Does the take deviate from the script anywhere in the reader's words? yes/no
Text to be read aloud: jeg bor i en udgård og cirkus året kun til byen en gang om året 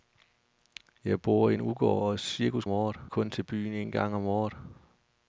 no